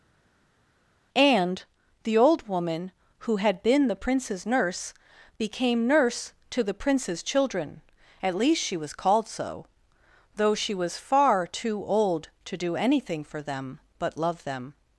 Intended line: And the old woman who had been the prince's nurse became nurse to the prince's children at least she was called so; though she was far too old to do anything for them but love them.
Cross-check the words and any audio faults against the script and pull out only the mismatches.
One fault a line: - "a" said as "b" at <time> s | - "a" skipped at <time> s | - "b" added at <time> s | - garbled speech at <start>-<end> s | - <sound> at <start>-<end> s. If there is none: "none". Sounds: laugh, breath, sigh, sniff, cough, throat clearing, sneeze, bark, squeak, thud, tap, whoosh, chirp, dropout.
none